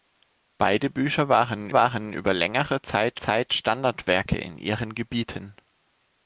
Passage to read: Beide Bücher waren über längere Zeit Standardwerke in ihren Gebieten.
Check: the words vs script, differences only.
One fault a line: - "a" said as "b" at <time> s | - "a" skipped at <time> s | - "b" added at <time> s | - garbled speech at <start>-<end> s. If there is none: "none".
- "waren" added at 1.7 s
- "Zeit" added at 3.2 s